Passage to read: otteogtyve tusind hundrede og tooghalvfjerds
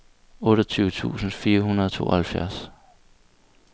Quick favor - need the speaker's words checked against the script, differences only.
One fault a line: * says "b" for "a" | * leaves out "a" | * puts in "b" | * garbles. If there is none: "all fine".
* puts in "fire"